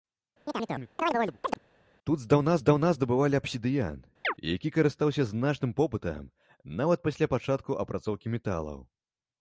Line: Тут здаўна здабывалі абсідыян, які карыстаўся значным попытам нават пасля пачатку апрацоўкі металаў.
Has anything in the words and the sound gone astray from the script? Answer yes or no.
yes